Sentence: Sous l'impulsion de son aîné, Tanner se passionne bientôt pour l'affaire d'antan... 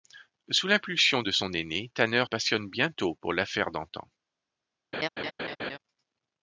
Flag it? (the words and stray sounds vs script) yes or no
yes